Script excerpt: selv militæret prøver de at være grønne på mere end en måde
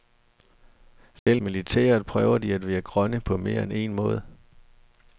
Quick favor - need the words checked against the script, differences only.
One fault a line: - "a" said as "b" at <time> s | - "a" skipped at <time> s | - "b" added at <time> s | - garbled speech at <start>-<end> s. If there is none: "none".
none